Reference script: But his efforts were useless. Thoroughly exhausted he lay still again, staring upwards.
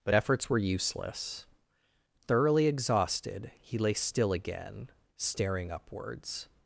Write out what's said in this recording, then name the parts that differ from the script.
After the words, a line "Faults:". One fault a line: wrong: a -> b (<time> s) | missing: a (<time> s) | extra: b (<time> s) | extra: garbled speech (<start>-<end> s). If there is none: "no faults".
But efforts were useless. Thoroughly exhausted he lay still again, staring upwards.
Faults:
missing: his (0.1 s)